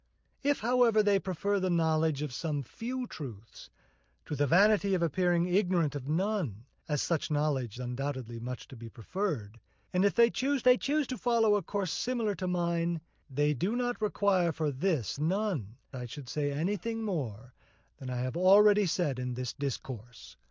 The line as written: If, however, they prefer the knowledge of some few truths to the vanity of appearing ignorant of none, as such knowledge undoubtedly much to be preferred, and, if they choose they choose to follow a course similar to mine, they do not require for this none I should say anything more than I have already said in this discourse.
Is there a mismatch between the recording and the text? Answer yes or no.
no